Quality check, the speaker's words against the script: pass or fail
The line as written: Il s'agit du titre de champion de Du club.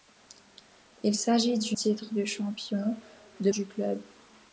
pass